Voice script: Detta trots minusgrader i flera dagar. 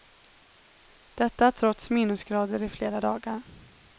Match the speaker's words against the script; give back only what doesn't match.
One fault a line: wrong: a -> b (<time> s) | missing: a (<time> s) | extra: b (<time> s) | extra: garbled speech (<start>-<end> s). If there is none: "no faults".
no faults